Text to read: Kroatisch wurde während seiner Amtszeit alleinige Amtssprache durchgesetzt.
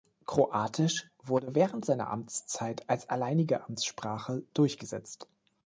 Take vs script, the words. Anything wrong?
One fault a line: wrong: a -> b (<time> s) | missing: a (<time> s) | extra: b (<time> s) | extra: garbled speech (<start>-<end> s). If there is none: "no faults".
extra: als (2.9 s)